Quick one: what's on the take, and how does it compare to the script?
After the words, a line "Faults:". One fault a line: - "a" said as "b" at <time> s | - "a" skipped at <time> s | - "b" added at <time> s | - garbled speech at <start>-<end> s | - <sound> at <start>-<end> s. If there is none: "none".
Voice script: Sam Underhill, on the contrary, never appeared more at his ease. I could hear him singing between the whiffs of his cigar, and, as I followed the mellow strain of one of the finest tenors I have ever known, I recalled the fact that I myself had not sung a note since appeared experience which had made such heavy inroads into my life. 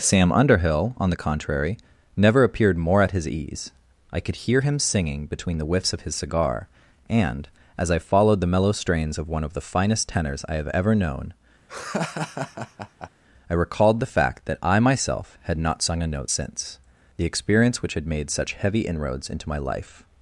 Sam Underhill, on the contrary, never appeared more at his ease. I could hear him singing between the whiffs of his cigar, and, as I followed the mellow strains of one of the finest tenors I have ever known, I recalled the fact that I myself had not sung a note since the experience which had made such heavy inroads into my life.
Faults:
- "strain" said as "strains" at 8.7 s
- laugh at 11.7-13.1 s
- "appeared" said as "the" at 17.1 s